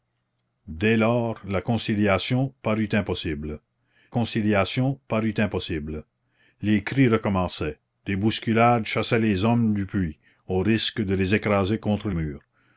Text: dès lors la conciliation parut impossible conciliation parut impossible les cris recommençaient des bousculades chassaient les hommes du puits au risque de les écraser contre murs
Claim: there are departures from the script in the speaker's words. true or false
false